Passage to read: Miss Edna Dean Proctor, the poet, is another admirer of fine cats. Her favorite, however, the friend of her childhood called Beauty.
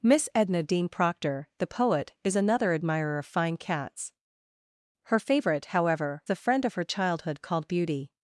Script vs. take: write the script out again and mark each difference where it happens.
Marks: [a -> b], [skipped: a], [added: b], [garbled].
Miss Edna Dean Proctor, the poet, is another admirer of fine cats. Her favorite, however, the friend of her childhood called Beauty.